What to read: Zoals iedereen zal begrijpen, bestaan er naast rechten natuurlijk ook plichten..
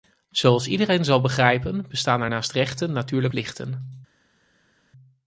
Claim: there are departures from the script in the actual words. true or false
true